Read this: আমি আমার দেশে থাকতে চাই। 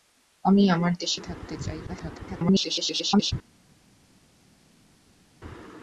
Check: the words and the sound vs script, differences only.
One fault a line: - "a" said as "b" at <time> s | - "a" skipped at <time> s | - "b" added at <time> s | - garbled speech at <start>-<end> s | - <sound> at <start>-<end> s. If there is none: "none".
- garbled speech at 1.9-3.3 s